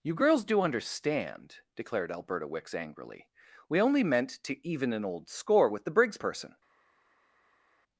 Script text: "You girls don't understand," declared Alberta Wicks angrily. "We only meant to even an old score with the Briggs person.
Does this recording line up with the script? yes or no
no